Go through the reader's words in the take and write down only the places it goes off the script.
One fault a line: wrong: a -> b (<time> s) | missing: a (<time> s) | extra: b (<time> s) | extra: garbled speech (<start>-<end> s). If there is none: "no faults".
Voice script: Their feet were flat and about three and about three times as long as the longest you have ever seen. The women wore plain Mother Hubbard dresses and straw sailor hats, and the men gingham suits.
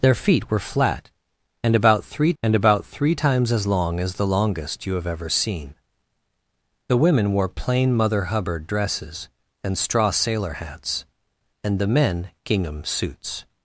no faults